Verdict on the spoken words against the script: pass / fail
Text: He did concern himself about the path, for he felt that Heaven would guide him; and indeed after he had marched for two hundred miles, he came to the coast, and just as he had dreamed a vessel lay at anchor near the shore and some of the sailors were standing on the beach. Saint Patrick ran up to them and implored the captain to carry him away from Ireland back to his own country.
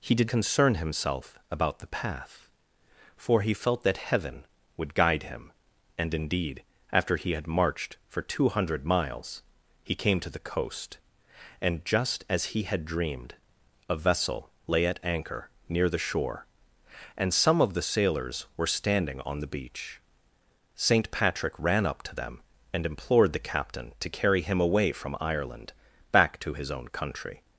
pass